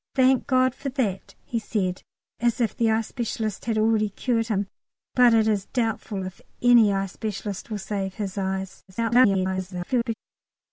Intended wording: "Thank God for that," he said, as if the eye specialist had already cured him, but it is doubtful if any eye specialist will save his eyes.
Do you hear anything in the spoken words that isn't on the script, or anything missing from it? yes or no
yes